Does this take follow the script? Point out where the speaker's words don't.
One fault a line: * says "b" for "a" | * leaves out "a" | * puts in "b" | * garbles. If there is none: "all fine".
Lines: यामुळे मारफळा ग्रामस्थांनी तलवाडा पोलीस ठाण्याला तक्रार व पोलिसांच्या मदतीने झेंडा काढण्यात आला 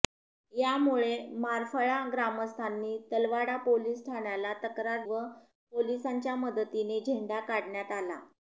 all fine